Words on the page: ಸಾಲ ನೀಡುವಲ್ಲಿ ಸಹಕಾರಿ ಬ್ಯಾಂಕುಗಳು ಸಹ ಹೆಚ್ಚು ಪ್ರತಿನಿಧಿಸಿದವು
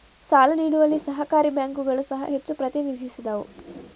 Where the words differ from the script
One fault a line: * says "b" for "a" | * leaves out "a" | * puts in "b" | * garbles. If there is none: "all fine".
all fine